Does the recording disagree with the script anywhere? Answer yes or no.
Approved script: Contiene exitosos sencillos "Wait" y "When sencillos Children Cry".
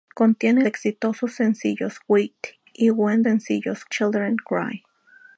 no